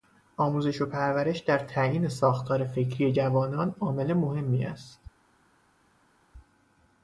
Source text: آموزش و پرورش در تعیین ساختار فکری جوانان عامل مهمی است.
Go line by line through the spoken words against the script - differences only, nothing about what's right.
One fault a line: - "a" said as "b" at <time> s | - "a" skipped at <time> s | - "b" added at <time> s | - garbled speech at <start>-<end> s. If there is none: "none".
none